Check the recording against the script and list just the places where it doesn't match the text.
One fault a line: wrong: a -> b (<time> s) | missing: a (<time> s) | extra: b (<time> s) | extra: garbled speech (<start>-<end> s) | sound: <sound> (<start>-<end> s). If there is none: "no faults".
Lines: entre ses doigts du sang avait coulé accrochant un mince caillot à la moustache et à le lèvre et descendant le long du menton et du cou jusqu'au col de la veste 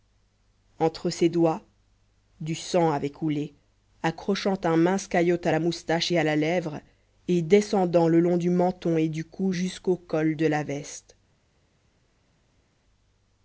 wrong: le -> la (6.2 s)